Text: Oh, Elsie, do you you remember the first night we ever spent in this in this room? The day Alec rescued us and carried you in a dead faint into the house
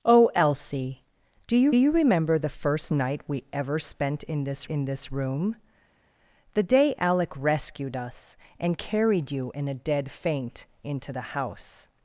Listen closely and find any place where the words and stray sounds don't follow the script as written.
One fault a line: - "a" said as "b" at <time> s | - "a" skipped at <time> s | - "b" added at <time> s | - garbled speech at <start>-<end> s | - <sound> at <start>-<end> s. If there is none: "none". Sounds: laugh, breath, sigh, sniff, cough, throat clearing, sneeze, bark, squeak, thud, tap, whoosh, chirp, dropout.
none